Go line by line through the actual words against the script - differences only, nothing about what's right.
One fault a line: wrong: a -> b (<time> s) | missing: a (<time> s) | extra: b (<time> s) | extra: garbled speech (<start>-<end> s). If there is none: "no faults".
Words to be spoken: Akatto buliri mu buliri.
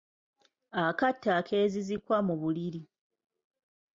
wrong: buliri -> akeezizikwa (1.4 s)